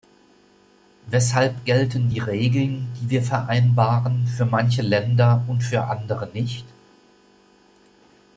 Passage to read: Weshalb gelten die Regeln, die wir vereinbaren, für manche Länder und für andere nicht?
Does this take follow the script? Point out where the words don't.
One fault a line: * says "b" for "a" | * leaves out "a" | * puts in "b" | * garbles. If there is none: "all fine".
all fine